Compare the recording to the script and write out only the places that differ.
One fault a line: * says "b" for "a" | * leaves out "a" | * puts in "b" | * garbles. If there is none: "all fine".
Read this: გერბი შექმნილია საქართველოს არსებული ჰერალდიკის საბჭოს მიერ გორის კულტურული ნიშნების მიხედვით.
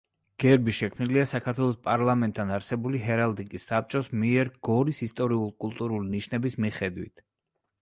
* puts in "პარლამენტთან"
* puts in "ისტორიულ"